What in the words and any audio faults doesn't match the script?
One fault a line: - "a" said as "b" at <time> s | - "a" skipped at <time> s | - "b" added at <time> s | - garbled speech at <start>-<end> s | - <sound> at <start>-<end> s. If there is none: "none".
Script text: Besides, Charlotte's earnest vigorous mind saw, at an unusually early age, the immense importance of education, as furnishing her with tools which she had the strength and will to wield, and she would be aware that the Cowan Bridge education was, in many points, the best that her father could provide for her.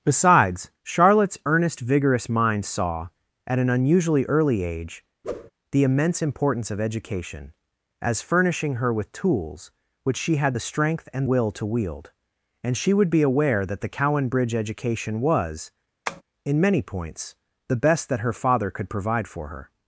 - whoosh at 5.2-5.5 s
- tap at 16.1-16.2 s